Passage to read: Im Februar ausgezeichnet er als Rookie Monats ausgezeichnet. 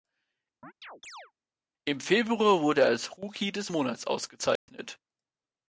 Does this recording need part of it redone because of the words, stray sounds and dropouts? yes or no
yes